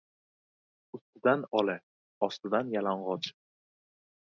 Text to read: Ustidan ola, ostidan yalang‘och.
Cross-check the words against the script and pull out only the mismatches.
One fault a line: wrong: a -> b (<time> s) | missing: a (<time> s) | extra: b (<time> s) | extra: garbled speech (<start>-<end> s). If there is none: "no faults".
no faults